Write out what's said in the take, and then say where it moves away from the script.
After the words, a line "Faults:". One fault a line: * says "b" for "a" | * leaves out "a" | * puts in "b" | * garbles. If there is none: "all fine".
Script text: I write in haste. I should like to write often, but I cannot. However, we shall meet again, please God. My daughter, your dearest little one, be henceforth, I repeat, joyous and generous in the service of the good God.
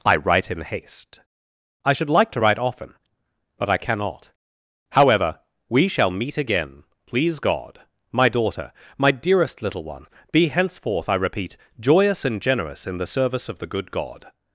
I write in haste. I should like to write often, but I cannot. However, we shall meet again, please God. My daughter, my dearest little one, be henceforth, I repeat, joyous and generous in the service of the good God.
Faults:
* says "my" for "your"